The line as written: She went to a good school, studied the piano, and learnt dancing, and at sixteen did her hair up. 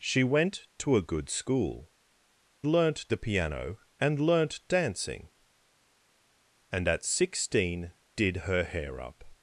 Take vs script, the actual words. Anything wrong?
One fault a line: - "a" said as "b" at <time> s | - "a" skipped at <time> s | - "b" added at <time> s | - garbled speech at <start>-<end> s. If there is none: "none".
- "studied" said as "learnt" at 2.6 s